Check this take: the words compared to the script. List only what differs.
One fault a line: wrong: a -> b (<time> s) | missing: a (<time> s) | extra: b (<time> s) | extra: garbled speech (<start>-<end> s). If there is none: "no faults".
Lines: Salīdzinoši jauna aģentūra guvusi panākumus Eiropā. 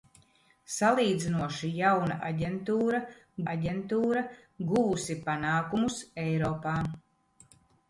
extra: aģentūra (3.5 s)